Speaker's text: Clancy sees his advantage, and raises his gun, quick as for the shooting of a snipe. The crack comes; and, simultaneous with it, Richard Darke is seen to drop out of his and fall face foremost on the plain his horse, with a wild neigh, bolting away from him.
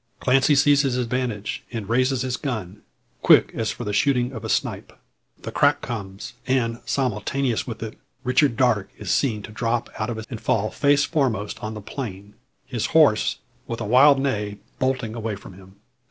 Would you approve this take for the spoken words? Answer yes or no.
yes